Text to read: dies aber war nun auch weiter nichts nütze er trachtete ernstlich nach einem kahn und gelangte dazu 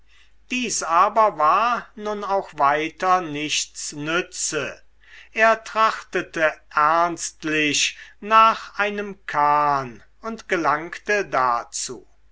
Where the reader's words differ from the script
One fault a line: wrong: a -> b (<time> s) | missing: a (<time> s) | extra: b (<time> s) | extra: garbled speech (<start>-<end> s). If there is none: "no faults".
no faults